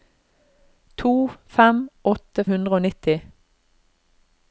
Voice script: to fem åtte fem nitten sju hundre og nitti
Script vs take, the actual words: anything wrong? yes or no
yes